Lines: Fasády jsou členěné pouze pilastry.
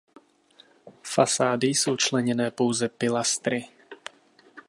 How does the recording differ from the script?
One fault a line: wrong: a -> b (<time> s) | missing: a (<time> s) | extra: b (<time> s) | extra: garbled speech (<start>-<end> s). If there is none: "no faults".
no faults